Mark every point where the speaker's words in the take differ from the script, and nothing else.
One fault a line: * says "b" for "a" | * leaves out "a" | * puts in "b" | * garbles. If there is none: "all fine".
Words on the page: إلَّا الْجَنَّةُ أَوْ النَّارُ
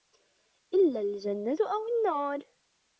all fine